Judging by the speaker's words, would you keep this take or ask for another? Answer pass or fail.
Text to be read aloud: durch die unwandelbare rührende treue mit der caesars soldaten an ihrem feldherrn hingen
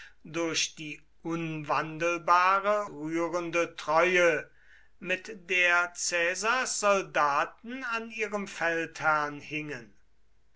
pass